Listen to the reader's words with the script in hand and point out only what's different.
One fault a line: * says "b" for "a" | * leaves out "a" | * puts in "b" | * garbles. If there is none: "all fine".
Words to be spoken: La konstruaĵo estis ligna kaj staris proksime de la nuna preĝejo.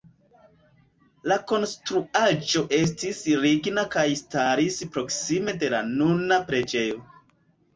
all fine